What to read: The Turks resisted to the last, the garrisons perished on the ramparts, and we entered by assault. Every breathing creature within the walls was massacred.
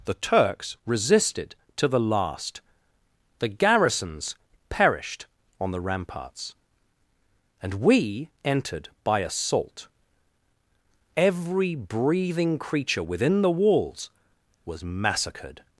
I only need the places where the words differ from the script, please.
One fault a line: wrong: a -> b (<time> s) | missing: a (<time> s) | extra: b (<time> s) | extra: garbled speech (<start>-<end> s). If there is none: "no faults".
no faults